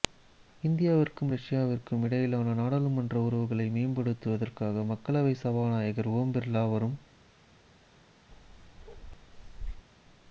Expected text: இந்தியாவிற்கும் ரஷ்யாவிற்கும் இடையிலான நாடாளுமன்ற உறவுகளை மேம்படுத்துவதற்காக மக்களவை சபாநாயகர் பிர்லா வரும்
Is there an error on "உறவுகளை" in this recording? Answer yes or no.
no